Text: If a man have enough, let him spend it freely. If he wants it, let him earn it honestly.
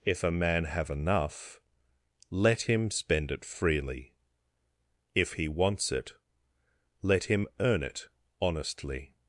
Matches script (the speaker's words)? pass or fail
pass